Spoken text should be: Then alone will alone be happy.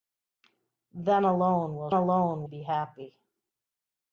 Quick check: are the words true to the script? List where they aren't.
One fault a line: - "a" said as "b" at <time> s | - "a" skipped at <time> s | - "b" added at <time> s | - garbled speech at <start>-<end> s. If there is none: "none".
none